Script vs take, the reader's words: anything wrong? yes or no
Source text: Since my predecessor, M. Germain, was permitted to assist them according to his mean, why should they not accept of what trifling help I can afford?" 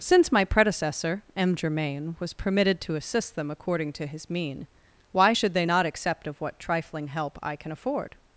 no